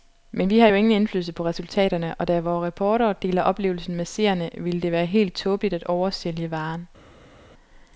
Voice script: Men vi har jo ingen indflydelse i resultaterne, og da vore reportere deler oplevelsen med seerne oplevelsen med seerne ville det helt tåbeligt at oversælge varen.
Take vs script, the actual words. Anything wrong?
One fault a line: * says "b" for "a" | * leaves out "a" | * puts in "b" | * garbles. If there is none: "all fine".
* says "på" for "i"
* leaves out "oplevelsen med seerne"
* puts in "være"